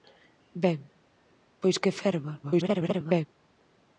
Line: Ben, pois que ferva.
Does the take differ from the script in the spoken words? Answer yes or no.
yes